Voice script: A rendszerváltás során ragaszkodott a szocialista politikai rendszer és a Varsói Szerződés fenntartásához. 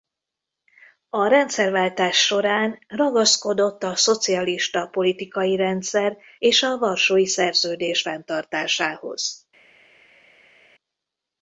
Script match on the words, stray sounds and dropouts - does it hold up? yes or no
yes